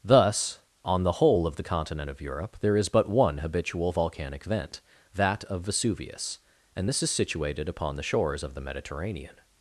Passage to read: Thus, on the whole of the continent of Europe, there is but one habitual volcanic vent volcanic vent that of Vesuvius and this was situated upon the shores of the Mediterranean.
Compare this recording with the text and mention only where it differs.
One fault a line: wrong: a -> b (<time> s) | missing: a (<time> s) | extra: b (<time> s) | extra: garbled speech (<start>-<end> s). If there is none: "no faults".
missing: volcanic vent (4.8 s)
wrong: was -> is (7.0 s)